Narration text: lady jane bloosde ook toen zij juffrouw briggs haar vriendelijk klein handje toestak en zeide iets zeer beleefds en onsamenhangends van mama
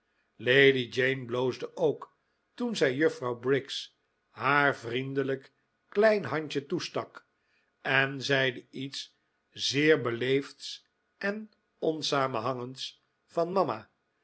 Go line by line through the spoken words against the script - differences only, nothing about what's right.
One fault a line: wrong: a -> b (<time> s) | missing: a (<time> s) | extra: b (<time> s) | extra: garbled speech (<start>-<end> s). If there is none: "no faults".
no faults